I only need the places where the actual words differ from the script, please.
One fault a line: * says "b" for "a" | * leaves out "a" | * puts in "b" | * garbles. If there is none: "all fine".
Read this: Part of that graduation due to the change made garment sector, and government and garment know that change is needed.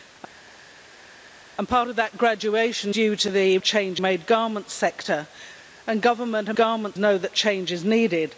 all fine